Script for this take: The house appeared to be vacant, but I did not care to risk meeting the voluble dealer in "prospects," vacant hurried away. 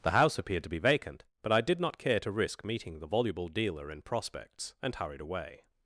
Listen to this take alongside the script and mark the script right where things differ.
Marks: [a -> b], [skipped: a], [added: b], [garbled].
The house appeared to be vacant, but I did not care to risk meeting the voluble dealer in "prospects," [vacant -> and] hurried away.